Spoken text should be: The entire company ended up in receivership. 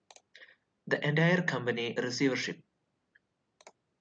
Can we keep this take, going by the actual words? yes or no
no